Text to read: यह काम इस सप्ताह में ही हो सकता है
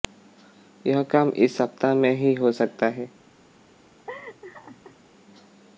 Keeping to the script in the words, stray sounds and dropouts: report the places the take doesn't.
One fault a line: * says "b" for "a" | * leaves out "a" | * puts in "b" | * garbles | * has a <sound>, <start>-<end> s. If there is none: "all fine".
* has a laugh, 4.1-5.0 s